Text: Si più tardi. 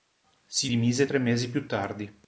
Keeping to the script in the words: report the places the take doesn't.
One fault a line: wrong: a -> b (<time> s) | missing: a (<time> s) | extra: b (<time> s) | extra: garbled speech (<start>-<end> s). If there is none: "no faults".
extra: dimise tre mesi (0.6 s)